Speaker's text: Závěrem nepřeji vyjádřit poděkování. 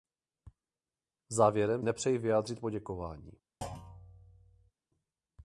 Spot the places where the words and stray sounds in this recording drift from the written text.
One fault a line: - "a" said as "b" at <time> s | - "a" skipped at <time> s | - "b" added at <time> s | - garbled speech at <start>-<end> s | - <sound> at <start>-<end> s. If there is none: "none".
- thud at 3.6-4.7 s